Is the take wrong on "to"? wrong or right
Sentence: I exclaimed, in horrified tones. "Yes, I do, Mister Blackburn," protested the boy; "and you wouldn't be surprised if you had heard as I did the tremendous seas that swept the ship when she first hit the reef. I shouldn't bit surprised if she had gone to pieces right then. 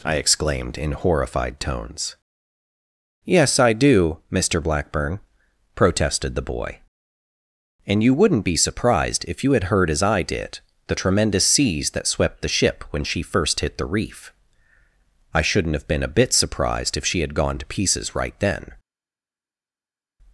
right